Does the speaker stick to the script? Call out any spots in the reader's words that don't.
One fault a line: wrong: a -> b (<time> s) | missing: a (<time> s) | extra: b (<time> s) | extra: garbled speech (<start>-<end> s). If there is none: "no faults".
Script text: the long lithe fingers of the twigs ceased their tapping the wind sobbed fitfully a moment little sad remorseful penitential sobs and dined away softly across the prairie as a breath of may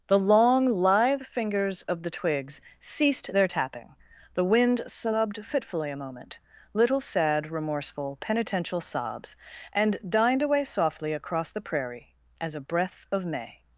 no faults